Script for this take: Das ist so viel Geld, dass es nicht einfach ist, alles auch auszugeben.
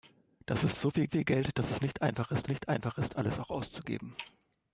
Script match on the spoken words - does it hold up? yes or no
no